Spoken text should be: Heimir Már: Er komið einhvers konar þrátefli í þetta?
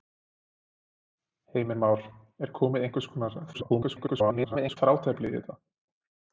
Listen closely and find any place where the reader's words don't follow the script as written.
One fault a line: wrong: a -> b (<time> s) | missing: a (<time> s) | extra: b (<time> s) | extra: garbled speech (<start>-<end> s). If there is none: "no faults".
extra: garbled speech (3.5-4.8 s)